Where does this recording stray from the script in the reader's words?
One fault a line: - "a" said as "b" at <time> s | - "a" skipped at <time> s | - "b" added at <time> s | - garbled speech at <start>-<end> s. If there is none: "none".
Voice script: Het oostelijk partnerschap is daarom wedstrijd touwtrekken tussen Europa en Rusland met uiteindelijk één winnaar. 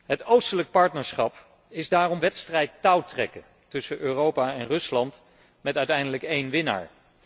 none